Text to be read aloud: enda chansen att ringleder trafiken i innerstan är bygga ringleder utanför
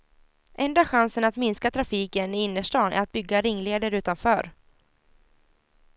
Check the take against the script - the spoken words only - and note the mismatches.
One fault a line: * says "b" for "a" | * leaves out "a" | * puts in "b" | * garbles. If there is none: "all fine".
* says "minska" for "ringleder"
* puts in "att"